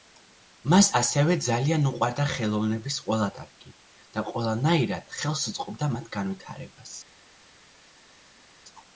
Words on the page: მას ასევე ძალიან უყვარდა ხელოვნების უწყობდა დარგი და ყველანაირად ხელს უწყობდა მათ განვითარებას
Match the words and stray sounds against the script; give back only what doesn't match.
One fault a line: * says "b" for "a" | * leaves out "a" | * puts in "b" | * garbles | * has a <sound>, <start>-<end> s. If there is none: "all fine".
* says "ყველა" for "უწყობდა"